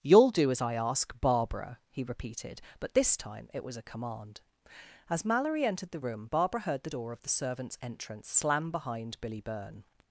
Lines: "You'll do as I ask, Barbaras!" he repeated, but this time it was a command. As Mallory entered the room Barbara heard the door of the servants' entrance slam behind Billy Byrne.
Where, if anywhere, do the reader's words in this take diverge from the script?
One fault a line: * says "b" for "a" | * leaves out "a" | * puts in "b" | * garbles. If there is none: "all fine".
* says "Barbara" for "Barbaras"